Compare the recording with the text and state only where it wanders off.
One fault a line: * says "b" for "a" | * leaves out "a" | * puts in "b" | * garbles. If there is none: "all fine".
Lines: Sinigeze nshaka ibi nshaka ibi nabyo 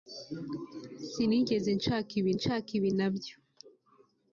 all fine